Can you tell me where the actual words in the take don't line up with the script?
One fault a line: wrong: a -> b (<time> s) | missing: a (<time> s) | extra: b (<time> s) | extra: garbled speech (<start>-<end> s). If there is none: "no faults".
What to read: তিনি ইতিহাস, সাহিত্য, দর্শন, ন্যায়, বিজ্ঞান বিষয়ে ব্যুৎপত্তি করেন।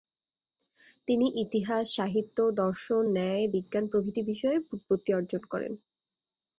extra: প্রভৃতি (3.9 s)
extra: অর্জন (5.1 s)